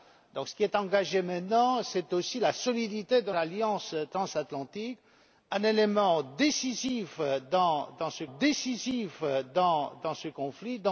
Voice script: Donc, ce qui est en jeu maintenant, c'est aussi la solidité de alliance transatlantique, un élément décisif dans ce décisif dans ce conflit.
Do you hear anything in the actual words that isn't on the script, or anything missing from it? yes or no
no